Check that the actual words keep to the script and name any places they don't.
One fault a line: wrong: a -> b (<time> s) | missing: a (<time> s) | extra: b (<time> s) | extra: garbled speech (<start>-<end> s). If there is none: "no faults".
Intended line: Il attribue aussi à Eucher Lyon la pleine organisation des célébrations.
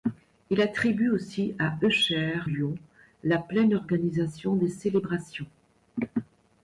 no faults